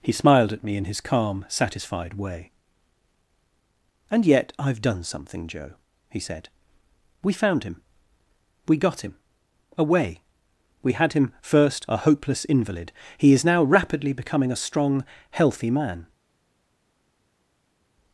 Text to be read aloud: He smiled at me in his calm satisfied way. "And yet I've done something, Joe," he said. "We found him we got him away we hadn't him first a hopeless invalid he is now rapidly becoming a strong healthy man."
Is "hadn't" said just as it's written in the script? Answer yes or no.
no